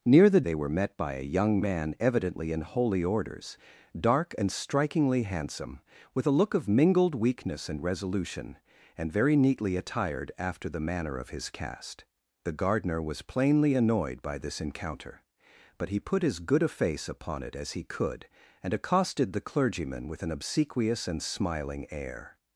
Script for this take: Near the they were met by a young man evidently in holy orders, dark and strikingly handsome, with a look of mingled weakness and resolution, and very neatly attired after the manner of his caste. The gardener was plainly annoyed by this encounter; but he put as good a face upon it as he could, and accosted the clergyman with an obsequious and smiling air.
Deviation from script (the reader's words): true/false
false